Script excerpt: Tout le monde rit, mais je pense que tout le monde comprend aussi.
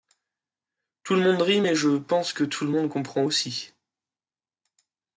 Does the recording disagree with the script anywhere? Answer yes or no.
no